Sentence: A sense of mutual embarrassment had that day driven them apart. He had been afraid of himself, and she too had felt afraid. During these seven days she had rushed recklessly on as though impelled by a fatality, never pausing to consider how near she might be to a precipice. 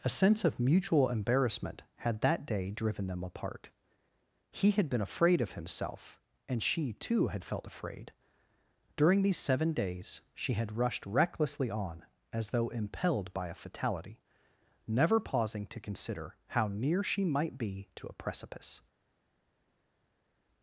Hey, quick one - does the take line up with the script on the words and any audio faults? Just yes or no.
yes